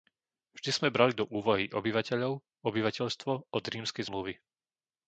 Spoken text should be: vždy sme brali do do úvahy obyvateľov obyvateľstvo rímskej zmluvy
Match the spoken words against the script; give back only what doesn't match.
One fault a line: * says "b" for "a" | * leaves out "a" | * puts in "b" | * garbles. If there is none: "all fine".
* leaves out "do"
* puts in "od"